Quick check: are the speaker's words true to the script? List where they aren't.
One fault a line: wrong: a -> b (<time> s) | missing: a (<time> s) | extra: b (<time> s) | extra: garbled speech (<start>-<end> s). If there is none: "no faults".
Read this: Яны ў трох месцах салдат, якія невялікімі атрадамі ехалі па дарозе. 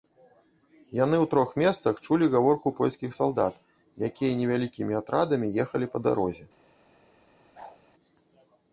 extra: чулі гаворку польскіх (2.1 s)